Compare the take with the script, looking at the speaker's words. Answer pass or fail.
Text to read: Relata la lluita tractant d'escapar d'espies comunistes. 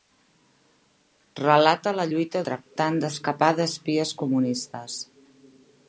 pass